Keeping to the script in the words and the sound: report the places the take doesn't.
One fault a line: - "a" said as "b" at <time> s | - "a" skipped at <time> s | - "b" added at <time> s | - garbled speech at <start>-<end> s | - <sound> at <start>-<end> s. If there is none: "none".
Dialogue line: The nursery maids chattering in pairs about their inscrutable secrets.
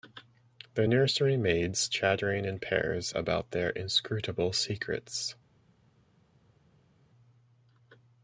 none